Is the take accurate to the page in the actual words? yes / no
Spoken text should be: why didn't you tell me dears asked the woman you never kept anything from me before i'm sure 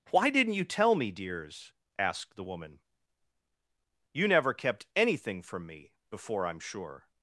yes